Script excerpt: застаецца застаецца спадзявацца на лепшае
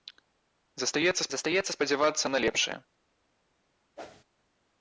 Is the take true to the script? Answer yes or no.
yes